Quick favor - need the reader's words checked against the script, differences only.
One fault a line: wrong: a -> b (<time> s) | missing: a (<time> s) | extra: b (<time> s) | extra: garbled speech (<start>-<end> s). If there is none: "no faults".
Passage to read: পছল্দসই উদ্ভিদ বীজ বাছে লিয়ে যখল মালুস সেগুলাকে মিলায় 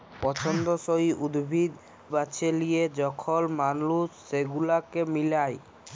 missing: বীজ (1.7 s)